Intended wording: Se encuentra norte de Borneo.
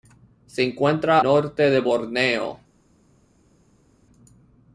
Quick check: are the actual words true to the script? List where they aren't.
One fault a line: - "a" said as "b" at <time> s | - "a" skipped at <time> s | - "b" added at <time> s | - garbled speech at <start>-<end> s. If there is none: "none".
none